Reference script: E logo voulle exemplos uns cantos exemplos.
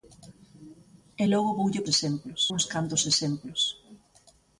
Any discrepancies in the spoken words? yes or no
no